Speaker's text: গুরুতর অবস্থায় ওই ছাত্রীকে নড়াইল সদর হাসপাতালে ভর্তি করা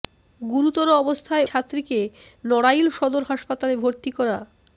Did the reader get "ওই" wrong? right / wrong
wrong